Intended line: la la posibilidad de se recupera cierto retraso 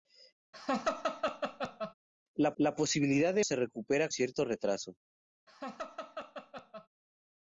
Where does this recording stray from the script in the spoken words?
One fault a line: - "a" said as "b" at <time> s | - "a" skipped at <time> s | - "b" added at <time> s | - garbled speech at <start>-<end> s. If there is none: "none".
none